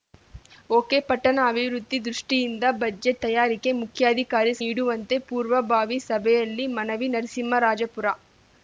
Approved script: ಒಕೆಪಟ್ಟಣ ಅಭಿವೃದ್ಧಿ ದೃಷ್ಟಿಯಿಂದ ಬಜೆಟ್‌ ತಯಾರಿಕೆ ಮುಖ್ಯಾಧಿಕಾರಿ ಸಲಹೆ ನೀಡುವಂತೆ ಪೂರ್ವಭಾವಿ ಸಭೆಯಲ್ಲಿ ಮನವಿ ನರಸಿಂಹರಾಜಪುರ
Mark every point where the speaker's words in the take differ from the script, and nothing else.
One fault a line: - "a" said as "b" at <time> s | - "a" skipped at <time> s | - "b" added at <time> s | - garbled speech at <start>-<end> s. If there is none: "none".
- "ಸಲಹೆ" skipped at 4.5 s